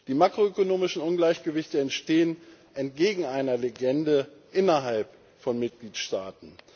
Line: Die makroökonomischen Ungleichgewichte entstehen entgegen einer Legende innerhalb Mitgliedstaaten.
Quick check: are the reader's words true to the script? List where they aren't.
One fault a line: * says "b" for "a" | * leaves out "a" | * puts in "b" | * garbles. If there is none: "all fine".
* puts in "von"